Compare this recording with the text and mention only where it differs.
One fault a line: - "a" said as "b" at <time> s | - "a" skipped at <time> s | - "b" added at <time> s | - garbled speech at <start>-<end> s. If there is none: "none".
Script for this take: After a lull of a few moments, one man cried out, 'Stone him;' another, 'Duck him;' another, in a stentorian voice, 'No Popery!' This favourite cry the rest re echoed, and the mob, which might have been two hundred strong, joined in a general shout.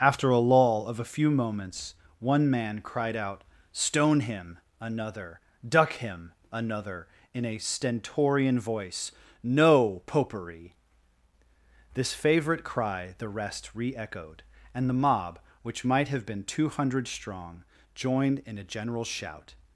none